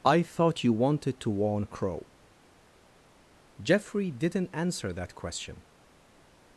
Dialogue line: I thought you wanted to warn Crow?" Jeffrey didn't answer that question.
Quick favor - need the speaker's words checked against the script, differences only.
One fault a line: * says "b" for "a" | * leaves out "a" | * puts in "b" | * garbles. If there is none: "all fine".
all fine